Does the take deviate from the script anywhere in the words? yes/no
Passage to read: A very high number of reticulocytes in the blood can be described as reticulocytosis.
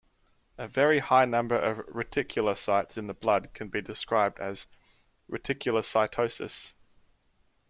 no